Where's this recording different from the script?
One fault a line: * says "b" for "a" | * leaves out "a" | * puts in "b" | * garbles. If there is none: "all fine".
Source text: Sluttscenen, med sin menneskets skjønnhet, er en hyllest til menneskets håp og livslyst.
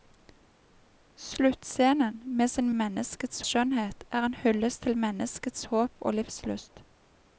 all fine